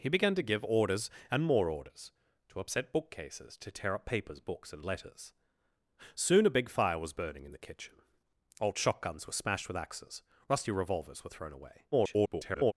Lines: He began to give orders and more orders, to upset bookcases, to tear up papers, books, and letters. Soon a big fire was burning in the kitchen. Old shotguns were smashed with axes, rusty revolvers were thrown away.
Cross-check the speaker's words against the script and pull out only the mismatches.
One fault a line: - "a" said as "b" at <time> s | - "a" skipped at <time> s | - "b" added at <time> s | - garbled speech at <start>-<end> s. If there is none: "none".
- garbled speech at 11.9-12.7 s